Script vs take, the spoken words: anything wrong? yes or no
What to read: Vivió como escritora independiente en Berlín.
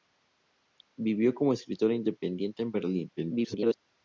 yes